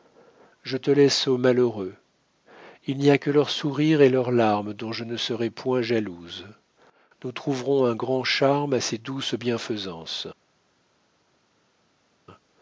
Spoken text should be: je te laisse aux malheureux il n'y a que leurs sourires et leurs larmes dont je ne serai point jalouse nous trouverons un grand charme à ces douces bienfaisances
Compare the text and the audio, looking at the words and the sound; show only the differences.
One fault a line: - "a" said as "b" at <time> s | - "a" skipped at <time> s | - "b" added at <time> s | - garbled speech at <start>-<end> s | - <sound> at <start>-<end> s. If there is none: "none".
none